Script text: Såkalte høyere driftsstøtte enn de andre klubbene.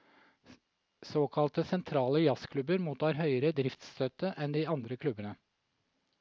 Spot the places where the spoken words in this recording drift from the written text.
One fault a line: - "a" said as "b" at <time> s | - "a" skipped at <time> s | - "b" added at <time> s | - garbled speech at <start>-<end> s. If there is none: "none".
- "sentrale jazzklubber mottar" added at 1.6 s